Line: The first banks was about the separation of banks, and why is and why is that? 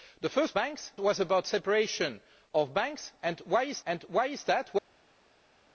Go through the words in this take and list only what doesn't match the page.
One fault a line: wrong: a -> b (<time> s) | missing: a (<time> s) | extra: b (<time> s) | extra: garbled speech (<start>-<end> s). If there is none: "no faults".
no faults